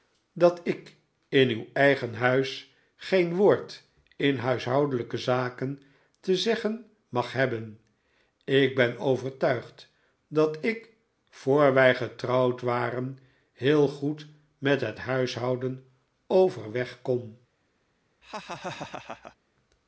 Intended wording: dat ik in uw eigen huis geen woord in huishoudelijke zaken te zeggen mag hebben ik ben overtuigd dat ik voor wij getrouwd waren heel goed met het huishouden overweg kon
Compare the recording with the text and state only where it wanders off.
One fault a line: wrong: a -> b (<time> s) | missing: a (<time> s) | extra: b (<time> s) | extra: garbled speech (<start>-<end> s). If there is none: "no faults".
no faults